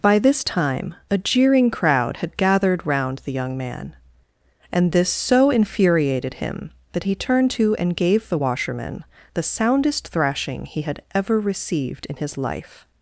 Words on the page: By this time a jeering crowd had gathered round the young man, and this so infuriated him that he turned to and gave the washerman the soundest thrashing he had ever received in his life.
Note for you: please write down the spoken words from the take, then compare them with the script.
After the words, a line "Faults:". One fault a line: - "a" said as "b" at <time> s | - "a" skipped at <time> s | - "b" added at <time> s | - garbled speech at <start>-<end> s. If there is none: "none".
By this time a jeering crowd had gathered round the young man, and this so infuriated him that he turned to and gave the washerman the soundest thrashing he had ever received in his life.
Faults:
none